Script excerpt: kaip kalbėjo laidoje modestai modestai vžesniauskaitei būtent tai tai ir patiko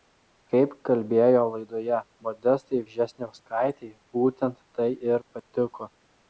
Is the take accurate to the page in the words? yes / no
no